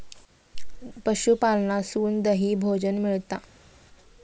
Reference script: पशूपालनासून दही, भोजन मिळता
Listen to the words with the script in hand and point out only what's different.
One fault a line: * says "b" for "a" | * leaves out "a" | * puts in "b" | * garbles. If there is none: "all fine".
all fine